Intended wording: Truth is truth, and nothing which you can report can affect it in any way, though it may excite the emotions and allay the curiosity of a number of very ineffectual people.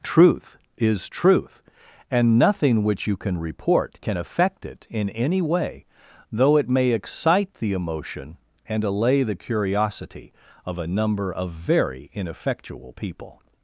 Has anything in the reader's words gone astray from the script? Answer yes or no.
yes